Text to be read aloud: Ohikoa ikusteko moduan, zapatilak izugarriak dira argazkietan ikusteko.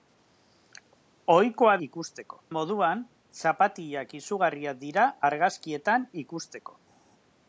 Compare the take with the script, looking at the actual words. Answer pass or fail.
pass